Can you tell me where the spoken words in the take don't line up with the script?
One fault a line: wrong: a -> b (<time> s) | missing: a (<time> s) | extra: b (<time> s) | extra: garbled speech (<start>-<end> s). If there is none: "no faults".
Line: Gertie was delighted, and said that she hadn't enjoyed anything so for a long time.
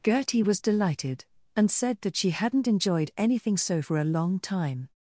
no faults